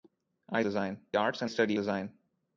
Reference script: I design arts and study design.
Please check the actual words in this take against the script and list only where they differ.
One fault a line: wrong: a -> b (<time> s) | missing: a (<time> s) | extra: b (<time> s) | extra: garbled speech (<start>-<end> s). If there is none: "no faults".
no faults